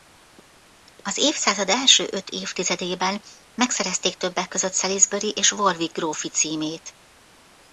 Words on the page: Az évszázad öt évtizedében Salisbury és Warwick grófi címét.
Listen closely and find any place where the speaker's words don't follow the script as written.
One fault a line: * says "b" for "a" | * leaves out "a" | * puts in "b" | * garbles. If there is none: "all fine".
* puts in "első"
* puts in "megszerezték többek között"